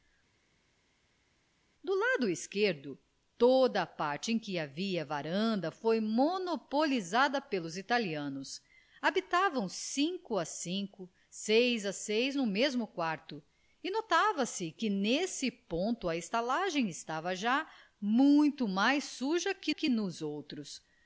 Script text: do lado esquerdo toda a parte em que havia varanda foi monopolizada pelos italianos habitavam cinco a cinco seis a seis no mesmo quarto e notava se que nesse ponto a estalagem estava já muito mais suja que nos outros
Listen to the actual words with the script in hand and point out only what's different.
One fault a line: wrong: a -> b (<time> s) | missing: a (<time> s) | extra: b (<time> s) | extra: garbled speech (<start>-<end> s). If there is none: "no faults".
extra: que (19.7 s)